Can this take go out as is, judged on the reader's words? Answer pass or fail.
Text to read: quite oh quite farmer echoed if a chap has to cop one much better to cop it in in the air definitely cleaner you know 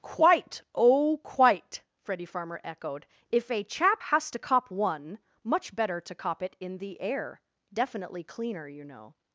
fail